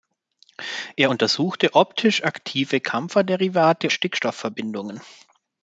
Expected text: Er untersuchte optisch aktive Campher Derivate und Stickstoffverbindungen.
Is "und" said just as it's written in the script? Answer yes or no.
no